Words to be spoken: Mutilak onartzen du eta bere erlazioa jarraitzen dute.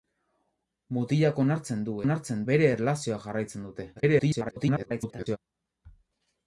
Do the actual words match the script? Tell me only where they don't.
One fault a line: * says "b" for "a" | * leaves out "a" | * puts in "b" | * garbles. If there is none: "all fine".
* says "onartzen" for "eta"
* garbles